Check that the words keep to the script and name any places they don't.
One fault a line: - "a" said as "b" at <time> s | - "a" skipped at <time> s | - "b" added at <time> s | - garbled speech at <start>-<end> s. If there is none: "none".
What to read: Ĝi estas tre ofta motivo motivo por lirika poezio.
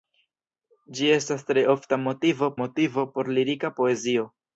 none